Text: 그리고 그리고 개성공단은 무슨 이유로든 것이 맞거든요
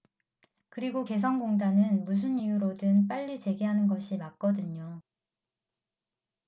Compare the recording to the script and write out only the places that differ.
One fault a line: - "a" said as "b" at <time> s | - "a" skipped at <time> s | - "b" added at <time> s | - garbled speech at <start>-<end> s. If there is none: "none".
- "그리고" skipped at 1.1 s
- "빨리 재개하는" added at 3.1 s